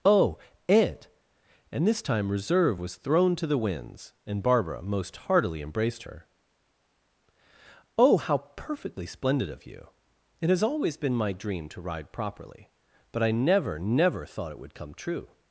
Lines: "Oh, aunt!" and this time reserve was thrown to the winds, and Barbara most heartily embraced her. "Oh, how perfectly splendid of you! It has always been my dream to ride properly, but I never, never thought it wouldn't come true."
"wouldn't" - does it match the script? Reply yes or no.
no